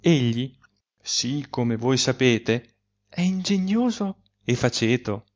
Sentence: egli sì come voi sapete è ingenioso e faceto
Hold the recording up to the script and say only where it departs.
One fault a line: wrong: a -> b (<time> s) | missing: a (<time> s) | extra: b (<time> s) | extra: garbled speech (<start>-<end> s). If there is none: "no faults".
no faults